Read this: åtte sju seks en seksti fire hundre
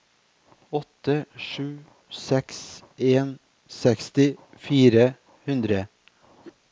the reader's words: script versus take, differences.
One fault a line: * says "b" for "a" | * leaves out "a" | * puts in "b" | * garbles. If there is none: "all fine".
all fine